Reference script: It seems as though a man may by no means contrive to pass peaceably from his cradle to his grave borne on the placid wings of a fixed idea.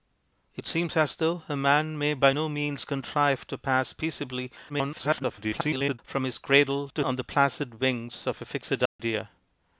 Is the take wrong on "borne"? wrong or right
wrong